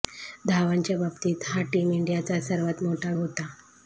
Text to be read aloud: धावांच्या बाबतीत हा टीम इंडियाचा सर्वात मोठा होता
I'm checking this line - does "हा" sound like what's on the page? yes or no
yes